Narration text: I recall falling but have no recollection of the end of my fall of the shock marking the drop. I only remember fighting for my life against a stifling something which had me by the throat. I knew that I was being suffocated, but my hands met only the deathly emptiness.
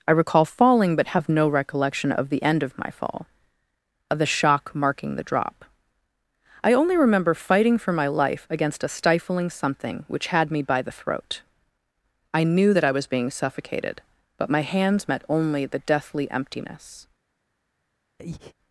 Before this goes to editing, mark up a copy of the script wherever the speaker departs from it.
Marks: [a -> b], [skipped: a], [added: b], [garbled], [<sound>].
I recall falling but have no recollection of the end of my fall of the shock marking the drop. I only remember fighting for my life against a stifling something which had me by the throat. I knew that I was being suffocated, but my hands met only the deathly emptiness. [breath]